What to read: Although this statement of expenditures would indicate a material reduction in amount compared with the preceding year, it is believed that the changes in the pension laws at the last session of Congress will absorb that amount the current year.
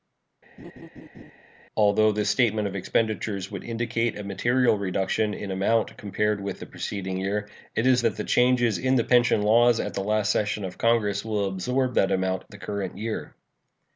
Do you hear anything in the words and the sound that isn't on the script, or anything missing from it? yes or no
yes